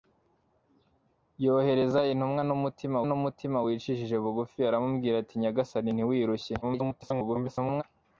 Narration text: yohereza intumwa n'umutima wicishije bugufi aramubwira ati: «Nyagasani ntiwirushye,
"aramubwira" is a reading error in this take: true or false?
false